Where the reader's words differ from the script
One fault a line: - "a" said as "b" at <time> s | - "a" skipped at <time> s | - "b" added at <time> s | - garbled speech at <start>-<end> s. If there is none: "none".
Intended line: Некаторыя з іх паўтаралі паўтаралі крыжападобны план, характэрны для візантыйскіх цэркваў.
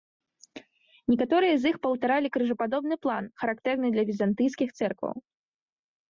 - "паўтаралі" skipped at 2.3 s